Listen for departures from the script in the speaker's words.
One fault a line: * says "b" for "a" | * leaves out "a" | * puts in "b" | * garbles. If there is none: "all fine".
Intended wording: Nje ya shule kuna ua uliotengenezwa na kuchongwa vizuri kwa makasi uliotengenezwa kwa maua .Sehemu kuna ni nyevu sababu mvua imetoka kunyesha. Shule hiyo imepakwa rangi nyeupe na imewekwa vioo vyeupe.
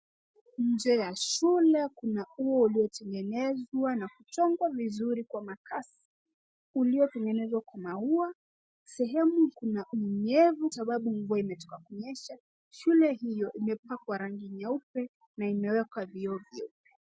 all fine